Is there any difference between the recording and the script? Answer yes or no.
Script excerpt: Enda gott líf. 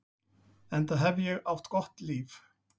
yes